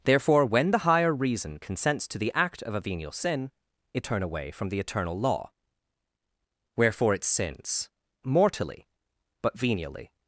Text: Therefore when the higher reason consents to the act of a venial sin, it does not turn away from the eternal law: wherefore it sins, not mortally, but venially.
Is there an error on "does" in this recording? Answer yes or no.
yes